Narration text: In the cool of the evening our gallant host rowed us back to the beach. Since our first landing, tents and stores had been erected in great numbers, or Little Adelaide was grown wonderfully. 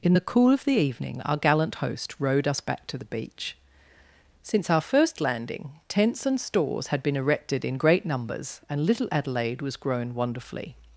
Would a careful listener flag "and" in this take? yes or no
no